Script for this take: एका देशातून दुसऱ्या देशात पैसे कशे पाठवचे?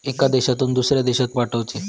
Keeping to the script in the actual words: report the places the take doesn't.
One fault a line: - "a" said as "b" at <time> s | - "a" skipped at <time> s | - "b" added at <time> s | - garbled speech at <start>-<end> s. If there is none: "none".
- "पैसे कशे" skipped at 1.3 s